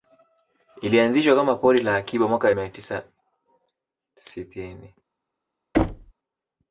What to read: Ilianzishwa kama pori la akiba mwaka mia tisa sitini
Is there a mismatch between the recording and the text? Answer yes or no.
no